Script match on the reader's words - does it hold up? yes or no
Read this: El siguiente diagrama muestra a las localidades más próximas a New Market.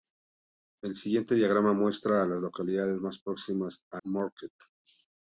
no